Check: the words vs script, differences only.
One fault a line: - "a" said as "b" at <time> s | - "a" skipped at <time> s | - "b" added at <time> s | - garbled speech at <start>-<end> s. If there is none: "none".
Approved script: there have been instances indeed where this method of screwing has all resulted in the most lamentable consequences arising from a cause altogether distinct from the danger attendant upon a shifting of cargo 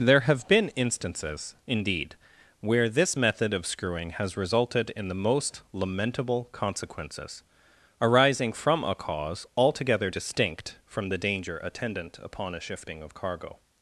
- "all" skipped at 4.4 s